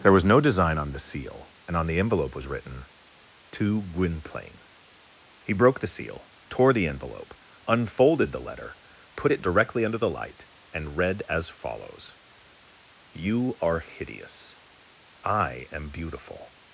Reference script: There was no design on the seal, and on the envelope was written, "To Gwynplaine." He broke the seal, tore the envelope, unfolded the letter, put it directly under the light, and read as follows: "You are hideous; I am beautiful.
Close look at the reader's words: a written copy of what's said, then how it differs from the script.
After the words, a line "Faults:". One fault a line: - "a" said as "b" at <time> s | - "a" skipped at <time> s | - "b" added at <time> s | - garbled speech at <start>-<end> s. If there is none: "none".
There was no design on the seal, and on the envelope was written, "To Gwynplaine." He broke the seal, tore the envelope, unfolded the letter, put it directly under the light, and read as follows: "You are hideous; I am beautiful.
Faults:
none